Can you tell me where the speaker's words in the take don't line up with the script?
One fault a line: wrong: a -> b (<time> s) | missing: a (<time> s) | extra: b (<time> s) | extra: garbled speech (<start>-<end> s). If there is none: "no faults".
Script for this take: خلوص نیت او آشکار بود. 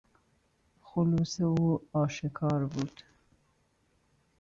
missing: نیت (1.4 s)